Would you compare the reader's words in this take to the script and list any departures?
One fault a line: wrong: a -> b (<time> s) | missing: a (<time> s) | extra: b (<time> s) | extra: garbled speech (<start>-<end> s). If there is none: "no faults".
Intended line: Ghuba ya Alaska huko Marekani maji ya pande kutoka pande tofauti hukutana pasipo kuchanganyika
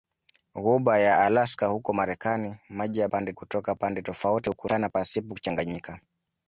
no faults